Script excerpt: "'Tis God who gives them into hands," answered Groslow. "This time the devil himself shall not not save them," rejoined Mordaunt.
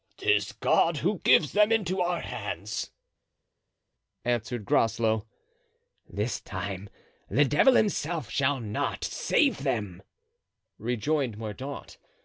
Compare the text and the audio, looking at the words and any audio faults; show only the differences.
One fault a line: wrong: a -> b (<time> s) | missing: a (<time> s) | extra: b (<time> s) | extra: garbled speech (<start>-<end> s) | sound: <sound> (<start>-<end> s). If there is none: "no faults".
extra: our (2.0 s)
missing: not (9.0 s)